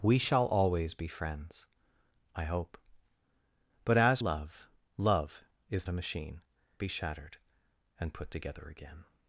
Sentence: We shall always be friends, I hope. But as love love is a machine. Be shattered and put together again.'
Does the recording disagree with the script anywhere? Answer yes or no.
no